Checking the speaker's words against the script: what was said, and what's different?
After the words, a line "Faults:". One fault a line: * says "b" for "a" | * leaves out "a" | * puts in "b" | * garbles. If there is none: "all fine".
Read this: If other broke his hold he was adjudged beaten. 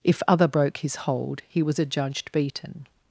If other broke his hold he was adjudged beaten.
Faults:
all fine